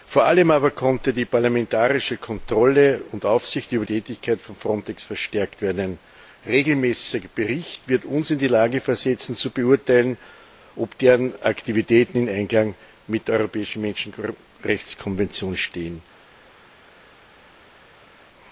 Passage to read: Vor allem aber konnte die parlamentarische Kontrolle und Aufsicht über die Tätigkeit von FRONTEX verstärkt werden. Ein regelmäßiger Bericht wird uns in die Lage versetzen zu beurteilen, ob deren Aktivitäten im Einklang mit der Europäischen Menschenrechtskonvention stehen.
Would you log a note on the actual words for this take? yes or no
yes